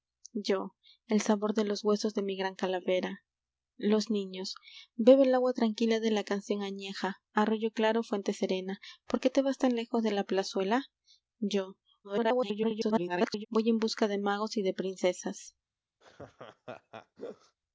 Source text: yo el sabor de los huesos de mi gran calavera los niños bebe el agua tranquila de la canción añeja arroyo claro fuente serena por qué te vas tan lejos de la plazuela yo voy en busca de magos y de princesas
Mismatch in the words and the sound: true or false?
true